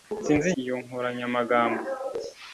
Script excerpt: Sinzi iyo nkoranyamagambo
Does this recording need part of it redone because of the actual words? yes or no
no